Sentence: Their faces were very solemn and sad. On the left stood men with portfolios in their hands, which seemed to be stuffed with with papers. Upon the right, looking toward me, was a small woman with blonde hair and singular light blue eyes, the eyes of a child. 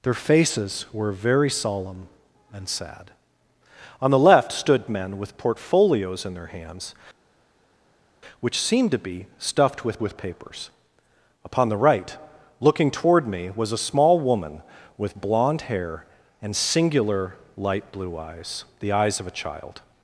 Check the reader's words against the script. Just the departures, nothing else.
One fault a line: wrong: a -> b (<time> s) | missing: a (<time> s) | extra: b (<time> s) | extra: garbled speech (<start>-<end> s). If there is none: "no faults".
no faults